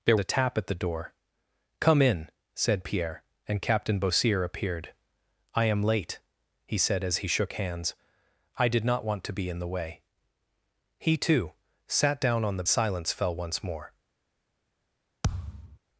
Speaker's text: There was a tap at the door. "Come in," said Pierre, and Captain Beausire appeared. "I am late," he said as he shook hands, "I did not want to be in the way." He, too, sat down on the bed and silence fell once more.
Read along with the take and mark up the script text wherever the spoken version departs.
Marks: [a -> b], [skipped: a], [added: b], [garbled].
There [skipped: was] a tap at the door. "Come in," said Pierre, and Captain Beausire appeared. "I am late," he said as he shook hands, "I did not want to be in the way." He, too, sat down on the [skipped: bed and] silence fell once more.